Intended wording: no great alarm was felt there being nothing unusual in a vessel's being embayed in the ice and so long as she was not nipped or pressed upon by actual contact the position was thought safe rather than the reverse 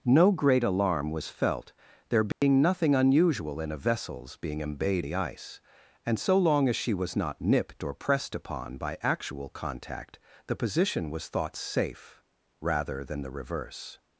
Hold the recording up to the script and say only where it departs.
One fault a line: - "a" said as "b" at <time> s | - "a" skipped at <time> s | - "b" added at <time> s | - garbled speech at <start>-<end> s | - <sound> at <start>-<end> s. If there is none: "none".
- dropout at 2.3-2.4 s
- "in" skipped at 5.0 s